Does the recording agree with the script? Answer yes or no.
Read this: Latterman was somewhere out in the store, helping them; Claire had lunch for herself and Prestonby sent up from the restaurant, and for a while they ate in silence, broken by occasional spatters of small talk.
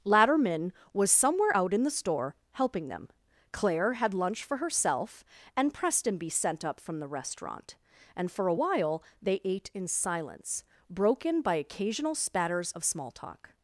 yes